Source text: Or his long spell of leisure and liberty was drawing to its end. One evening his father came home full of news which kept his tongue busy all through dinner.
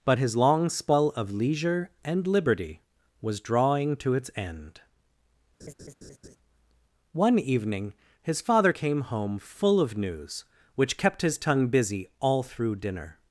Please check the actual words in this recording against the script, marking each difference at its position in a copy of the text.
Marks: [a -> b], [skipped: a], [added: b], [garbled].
[Or -> But] his long spell of leisure and liberty was drawing to its end. One evening his father came home full of news which kept his tongue busy all through dinner.